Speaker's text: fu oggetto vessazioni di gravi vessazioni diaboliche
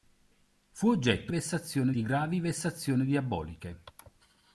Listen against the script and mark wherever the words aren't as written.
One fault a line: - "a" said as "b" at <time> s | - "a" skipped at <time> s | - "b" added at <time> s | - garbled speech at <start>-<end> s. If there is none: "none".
none